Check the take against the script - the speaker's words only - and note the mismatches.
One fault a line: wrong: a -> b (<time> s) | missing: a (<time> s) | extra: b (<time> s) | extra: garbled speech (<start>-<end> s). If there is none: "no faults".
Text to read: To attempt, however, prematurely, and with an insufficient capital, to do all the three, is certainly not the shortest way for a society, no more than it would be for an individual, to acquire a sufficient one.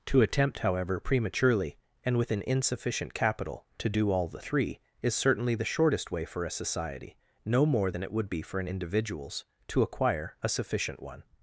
missing: not (5.5 s)
wrong: individual -> individuals (8.7 s)